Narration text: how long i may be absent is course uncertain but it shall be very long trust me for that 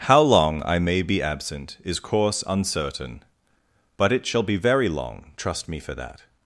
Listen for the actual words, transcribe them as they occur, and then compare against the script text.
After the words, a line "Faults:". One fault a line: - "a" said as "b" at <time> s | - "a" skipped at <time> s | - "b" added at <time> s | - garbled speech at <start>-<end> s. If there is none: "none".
how long i may be absent is course uncertain but it shall be very long trust me for that
Faults:
none